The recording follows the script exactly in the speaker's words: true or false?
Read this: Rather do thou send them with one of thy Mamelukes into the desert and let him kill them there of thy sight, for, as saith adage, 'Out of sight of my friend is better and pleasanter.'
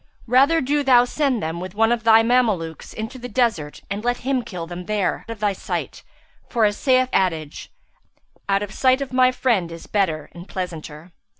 true